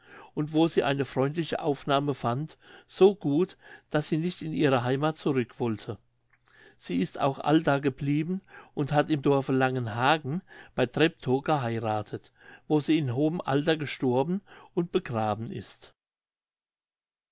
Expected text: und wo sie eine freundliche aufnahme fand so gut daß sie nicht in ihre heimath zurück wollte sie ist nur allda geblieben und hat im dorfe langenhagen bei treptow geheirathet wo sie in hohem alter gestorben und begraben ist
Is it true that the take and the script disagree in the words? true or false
true